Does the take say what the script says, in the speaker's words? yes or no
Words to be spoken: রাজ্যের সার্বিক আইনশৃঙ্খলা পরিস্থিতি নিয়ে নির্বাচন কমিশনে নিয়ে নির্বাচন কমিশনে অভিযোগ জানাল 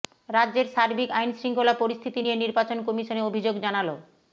no